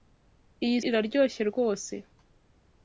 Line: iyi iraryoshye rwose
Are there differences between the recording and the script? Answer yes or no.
no